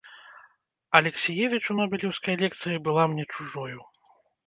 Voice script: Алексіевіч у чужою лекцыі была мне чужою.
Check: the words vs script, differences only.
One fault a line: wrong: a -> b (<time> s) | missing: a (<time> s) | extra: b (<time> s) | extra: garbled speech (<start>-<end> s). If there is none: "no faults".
wrong: чужою -> нобелеўскай (1.8 s)